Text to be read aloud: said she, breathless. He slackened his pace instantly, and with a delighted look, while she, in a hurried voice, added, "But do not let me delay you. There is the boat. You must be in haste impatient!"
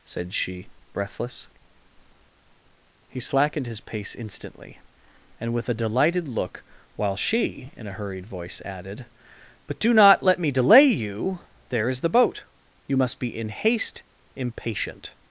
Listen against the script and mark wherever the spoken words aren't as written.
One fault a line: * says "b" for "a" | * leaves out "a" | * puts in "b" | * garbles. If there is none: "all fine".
all fine